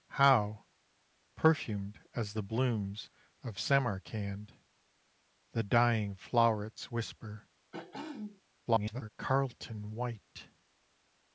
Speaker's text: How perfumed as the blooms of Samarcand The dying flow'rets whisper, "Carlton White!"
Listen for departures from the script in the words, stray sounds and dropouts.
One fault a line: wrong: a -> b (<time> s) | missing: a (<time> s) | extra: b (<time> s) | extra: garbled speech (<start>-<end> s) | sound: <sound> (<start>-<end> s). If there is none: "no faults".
sound: throat clearing (7.7-8.4 s)
extra: garbled speech (8.6-9.1 s)